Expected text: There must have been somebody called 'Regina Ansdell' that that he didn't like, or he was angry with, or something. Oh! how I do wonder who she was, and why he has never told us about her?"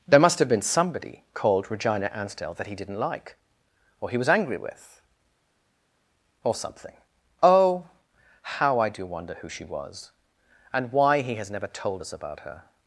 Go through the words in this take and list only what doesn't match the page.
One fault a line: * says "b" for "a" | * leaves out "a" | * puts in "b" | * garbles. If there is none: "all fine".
* leaves out "that"